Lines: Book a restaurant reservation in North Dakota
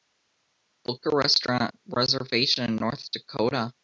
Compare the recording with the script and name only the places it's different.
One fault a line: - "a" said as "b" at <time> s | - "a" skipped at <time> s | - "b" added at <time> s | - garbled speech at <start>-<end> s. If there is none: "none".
none